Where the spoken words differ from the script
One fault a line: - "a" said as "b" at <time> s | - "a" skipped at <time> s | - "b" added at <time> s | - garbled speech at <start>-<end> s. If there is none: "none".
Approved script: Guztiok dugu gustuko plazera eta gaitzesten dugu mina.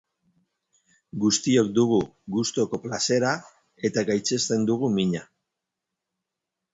none